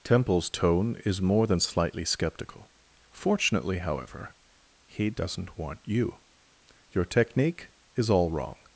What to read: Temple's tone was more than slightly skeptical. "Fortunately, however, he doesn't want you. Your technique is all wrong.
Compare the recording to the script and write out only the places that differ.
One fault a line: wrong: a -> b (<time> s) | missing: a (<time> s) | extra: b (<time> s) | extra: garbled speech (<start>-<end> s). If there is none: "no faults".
wrong: was -> is (1.1 s)